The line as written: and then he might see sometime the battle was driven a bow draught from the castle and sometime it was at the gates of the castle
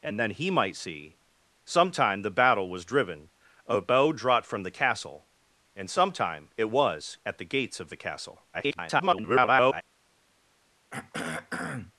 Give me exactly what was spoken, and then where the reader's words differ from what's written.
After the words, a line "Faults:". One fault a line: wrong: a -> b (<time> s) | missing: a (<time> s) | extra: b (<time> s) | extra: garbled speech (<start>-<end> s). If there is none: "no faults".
and then he might see sometime the battle was driven a bow draught from the castle and sometime it was at the gates of the castle [garbled]
Faults:
extra: garbled speech (8.5-9.8 s)